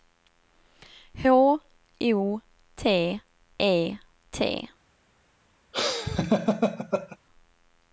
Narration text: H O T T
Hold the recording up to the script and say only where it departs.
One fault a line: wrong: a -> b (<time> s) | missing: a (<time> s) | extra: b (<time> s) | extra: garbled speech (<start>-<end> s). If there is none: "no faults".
extra: E (3.6 s)